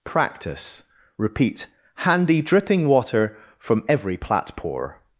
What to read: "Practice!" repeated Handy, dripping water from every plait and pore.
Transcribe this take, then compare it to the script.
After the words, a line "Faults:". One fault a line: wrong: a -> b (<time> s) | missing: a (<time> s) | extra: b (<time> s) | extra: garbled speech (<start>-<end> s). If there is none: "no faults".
"Practice!" repeat Handy, dripping water from every plait pore.
Faults:
wrong: repeated -> repeat (1.2 s)
missing: and (4.5 s)